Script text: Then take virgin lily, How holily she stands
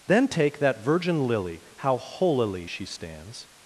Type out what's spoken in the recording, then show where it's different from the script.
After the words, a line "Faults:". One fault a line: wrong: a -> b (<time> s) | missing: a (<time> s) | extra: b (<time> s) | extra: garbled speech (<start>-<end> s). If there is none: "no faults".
Then take that virgin lily, How holily she stands
Faults:
extra: that (0.6 s)